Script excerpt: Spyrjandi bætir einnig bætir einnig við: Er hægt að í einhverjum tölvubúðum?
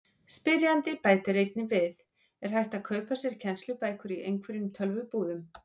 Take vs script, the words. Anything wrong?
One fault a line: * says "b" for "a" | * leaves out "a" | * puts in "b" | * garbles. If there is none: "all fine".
* leaves out "bætir einnig"
* puts in "kaupa sér kennslubækur"